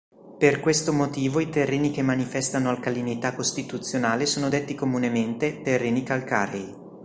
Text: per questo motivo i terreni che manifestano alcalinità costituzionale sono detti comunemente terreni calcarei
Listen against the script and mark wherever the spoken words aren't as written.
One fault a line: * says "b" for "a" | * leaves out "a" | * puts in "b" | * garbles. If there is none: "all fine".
all fine